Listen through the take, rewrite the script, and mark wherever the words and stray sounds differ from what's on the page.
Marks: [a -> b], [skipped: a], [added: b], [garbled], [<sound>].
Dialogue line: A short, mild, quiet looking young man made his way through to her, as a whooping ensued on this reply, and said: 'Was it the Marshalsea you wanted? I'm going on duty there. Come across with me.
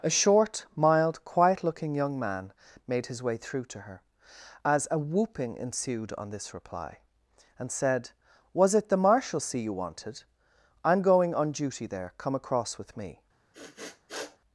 A short, mild, quiet looking young man made his way through to her, as a whooping ensued on this reply, and said: 'Was it the Marshalsea you wanted? I'm going on duty there. Come across with me. [sniff]